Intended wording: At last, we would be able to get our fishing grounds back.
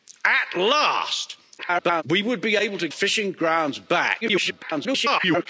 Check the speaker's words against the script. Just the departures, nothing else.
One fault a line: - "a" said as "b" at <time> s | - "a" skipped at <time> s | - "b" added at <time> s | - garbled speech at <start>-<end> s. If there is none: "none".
- garbled speech at 1.6-2.0 s
- "get our" skipped at 2.9 s
- garbled speech at 4.2-5.5 s